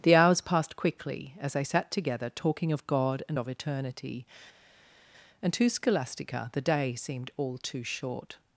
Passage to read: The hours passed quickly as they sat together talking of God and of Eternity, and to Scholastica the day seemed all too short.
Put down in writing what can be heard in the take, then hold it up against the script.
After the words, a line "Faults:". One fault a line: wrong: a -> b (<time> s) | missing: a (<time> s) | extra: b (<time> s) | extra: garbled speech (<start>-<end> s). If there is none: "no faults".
The hours passed quickly as they sat together talking of God and of Eternity, and to Scholastica the day seemed all too short.
Faults:
no faults